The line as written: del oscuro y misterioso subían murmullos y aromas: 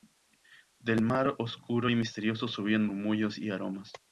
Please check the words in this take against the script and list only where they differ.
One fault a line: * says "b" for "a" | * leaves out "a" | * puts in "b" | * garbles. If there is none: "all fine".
* puts in "mar"